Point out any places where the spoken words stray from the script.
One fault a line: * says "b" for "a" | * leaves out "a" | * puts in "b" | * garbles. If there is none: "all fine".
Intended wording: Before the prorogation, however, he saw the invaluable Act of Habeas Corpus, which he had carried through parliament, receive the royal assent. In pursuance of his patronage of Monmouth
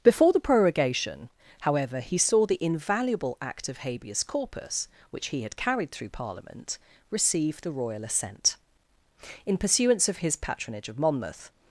all fine